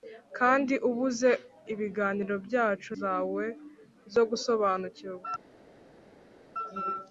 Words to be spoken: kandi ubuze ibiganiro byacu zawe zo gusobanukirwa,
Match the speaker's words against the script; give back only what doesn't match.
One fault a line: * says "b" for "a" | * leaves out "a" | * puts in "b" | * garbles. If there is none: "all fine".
all fine